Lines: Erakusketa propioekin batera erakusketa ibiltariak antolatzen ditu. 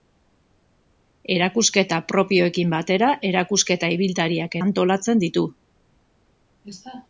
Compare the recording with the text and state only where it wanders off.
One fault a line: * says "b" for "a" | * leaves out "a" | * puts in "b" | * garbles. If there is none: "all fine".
all fine